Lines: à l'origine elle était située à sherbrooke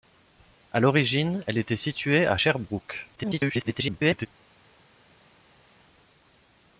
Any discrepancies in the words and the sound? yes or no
yes